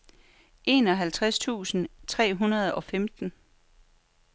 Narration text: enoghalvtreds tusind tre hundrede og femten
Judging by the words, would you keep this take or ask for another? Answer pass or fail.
pass